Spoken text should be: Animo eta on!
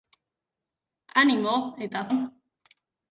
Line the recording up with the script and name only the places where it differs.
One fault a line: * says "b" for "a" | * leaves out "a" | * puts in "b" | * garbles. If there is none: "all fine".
all fine